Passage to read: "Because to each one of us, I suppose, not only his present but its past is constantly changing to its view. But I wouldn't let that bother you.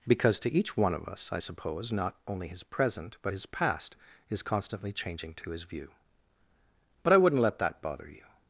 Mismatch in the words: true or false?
true